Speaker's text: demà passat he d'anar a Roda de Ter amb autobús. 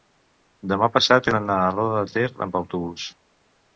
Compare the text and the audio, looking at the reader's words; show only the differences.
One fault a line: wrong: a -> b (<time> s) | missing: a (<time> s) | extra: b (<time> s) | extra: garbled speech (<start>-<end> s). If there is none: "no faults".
no faults